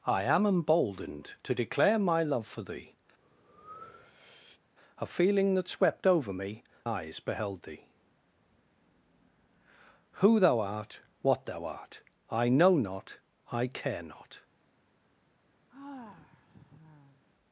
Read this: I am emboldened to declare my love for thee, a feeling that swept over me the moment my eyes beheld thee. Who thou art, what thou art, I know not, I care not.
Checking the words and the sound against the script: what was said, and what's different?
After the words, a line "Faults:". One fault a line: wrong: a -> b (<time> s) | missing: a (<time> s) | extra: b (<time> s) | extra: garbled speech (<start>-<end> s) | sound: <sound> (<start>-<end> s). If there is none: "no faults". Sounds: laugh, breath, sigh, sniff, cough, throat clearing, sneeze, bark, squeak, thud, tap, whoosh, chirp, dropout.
I am emboldened to declare my love for thee, a feeling that swept over me eyes beheld thee. Who thou art, what thou art, I know not, I care not.
Faults:
sound: breath (3.2-4.6 s)
missing: the moment my (6.6 s)
sound: sigh (15.7-17.2 s)